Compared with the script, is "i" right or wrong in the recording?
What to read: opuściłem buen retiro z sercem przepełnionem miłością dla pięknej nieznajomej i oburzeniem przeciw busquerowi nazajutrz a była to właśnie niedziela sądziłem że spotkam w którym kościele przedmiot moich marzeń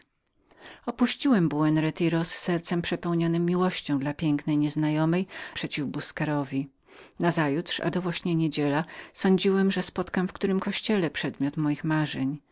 wrong